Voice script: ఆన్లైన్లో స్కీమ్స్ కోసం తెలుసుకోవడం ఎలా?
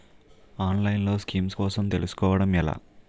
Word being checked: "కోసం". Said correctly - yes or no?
yes